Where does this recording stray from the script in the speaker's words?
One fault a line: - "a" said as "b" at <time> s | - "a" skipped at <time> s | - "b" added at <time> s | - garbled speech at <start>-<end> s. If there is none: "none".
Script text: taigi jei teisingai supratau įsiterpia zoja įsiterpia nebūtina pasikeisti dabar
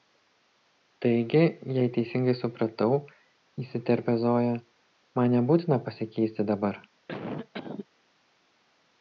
- "įsiterpia" said as "man" at 5.2 s